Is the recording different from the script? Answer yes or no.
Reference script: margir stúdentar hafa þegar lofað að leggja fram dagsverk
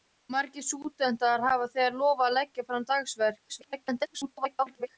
yes